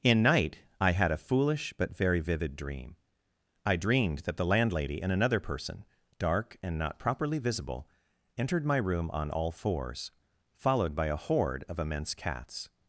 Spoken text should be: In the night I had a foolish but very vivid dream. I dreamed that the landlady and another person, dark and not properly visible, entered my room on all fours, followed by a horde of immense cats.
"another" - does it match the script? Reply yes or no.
yes